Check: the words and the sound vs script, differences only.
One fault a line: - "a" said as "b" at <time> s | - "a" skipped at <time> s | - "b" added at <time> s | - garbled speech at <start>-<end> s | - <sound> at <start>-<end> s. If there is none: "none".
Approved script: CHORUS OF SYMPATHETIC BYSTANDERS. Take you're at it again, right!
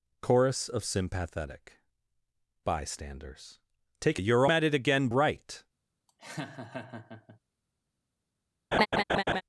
- laugh at 6.1-7.4 s
- laugh at 8.7-9.4 s